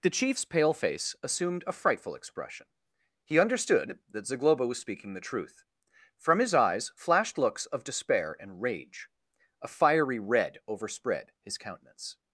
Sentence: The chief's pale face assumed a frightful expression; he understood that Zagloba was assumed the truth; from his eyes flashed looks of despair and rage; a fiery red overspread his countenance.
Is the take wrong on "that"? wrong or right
right